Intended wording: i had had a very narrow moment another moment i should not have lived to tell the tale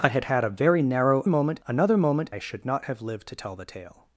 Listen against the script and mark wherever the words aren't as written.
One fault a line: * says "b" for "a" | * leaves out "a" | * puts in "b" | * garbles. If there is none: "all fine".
all fine